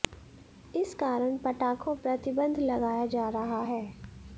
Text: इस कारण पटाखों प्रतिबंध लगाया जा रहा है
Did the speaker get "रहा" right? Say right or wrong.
right